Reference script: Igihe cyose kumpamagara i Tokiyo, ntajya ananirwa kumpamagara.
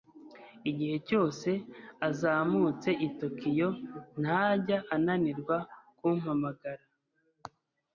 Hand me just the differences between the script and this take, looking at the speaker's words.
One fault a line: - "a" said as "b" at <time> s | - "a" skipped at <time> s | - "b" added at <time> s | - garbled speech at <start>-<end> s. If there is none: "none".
- "kumpamagara" said as "azamutse" at 2.1 s